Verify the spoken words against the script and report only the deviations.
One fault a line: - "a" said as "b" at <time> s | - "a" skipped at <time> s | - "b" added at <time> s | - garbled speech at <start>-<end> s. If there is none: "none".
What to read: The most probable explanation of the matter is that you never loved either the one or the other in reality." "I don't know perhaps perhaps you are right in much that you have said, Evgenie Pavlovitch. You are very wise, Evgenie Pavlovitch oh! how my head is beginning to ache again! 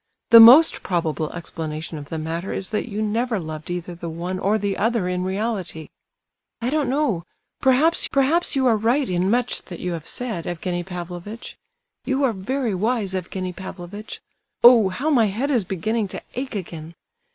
none